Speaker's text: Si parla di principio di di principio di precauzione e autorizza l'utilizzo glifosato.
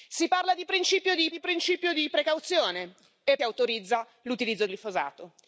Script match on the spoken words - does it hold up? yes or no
yes